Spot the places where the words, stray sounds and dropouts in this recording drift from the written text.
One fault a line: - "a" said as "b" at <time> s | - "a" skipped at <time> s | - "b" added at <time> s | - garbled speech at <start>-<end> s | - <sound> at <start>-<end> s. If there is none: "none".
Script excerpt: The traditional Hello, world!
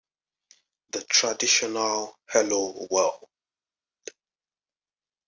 none